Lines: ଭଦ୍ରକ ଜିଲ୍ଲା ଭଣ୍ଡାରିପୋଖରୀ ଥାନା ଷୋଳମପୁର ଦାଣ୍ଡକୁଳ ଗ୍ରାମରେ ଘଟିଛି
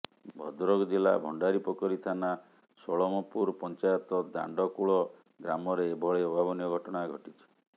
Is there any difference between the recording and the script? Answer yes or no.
yes